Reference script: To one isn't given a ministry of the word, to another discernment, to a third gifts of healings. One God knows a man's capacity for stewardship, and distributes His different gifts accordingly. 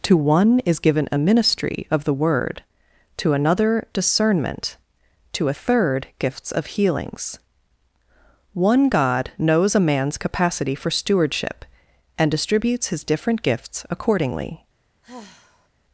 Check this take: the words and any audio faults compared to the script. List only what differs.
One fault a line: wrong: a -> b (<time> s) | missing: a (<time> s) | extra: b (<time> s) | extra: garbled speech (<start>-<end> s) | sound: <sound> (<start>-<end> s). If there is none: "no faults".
wrong: isn't -> is (0.6 s)
sound: sigh (15.0-15.7 s)